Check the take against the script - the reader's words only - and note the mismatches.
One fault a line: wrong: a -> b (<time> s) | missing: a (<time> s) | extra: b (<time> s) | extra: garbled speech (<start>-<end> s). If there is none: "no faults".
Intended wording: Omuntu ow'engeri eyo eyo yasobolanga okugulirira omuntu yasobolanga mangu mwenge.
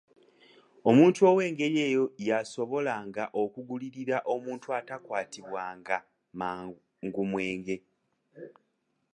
missing: eyo (2.0 s)
wrong: yasobolanga -> atakwatibwanga (4.8 s)